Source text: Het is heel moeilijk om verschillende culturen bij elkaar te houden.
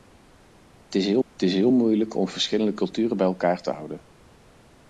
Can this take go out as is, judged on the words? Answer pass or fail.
fail